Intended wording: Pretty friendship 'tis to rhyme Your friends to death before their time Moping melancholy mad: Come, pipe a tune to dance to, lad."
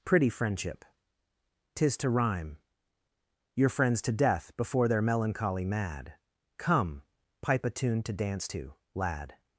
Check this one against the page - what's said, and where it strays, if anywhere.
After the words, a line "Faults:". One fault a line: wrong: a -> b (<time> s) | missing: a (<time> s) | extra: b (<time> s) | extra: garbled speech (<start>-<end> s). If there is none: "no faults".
Pretty friendship 'tis to rhyme Your friends to death before their melancholy mad: Come, pipe a tune to dance to, lad."
Faults:
missing: time Moping (5.0 s)